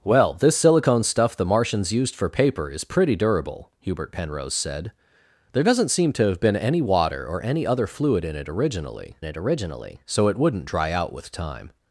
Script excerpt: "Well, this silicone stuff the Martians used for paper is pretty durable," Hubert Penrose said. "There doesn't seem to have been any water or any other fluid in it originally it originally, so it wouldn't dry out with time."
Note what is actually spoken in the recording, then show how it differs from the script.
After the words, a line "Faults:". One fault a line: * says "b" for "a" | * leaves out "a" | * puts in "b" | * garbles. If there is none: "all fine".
"Well, this silicone stuff the Martians used for paper is pretty durable," Hubert Penrose said. "There doesn't seem to have been any water or any other fluid in it originally it originally, so it wouldn't dry out with time."
Faults:
all fine